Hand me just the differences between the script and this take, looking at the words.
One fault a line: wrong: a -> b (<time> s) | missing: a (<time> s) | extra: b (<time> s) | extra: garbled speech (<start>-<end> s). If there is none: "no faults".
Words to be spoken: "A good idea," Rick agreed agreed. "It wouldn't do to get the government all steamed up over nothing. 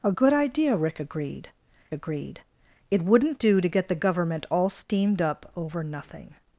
no faults